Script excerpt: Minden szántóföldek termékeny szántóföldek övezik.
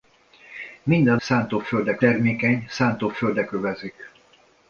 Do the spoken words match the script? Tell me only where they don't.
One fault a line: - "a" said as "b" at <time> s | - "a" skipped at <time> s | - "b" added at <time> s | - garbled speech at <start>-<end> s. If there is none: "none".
none